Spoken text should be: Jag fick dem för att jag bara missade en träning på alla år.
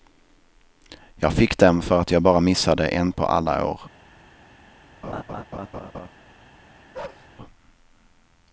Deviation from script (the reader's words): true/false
true